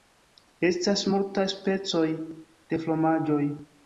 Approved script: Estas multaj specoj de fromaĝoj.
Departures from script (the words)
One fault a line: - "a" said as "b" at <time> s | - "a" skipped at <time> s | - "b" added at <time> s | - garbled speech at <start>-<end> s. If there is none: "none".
none